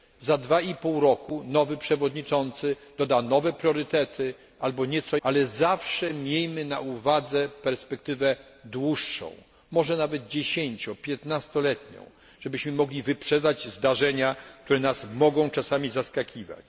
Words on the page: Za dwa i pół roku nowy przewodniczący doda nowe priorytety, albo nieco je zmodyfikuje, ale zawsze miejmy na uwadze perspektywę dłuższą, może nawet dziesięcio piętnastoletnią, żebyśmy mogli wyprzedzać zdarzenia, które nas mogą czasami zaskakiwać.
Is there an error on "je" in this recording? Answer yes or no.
yes